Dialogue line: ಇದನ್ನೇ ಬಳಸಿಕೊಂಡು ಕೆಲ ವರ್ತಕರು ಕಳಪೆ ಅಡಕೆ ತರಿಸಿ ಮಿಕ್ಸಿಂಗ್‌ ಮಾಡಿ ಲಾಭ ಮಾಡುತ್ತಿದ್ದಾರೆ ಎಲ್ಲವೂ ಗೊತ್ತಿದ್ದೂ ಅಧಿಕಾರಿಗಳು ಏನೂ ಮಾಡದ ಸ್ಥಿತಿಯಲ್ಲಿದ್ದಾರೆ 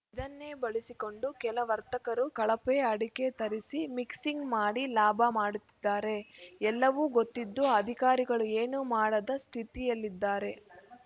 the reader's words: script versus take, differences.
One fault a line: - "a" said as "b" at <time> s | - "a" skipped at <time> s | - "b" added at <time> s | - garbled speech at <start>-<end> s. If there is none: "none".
none